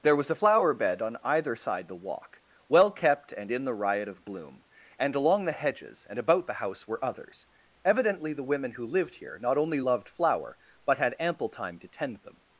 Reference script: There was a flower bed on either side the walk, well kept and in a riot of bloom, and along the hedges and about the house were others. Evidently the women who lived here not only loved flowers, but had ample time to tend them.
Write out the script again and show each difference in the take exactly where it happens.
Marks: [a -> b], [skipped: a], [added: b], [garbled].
There was a flower bed on either side the walk, well kept and in [a -> the] riot of bloom, and along the hedges and about the house were others. Evidently the women who lived here not only loved [flowers, -> flower] but had ample time to tend them.